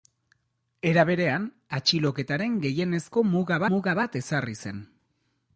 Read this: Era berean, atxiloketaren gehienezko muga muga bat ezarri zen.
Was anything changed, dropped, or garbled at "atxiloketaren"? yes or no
no